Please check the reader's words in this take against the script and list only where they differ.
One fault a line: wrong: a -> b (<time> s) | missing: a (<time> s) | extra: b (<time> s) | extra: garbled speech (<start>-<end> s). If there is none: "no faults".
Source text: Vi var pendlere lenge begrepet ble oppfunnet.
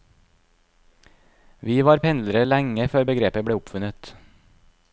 extra: før (2.9 s)